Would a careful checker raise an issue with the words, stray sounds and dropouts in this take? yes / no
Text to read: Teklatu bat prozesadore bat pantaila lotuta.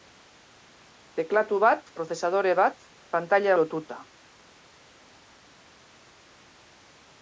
no